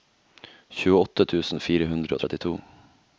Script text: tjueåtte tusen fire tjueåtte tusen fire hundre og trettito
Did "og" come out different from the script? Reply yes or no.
no